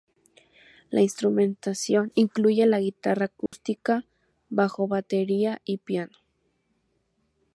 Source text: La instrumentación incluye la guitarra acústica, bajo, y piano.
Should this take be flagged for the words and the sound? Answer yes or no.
yes